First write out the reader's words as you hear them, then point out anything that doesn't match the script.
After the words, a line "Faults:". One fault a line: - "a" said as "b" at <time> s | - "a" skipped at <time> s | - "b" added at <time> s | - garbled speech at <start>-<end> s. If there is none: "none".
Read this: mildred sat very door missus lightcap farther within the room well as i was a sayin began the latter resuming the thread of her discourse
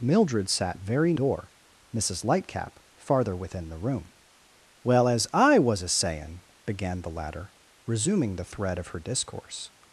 mildred sat very door missus lightcap farther within the room well as i was a sayin began the latter resuming the thread of her discourse
Faults:
none